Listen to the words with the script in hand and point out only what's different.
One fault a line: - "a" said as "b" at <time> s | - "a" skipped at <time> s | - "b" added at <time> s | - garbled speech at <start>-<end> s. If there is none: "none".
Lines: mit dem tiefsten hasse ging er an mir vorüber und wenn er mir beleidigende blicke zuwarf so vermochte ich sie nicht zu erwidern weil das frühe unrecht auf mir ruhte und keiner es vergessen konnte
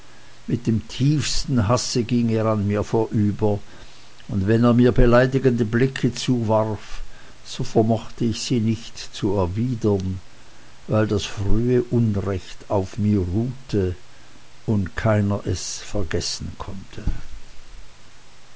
none